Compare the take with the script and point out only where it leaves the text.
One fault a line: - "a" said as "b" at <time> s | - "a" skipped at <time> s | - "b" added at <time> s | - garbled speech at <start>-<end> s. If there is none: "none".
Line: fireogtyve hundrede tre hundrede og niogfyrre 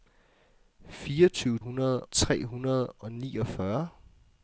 none